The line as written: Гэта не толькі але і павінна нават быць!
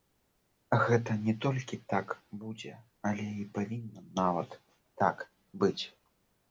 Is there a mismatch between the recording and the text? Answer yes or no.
yes